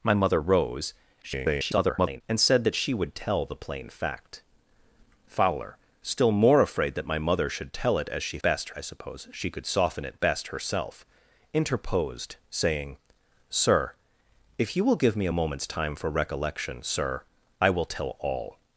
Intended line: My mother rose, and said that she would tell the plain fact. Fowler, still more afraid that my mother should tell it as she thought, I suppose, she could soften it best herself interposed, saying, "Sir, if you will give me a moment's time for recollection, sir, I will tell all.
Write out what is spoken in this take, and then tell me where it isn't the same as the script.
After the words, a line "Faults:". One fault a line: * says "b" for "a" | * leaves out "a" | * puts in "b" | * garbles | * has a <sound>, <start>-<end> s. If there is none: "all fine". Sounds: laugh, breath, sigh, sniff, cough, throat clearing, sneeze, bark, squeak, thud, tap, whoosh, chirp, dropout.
My mother rose, [garbled] and said that she would tell the plain fact. Fowler, still more afraid that my mother should tell it as she best, I suppose, she could soften it best herself interposed, saying, "Sir, if you will give me a moment's time for recollection, sir, I will tell all.
Faults:
* garbles
* says "best" for "thought"